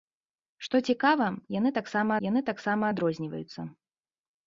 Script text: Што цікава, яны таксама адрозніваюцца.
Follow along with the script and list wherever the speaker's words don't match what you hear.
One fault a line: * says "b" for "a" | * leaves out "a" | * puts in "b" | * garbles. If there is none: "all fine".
* puts in "яны таксама"